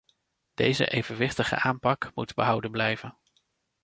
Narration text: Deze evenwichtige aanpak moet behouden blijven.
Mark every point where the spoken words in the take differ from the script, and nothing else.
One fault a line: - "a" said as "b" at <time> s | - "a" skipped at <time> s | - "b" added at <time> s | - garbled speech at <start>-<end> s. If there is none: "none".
none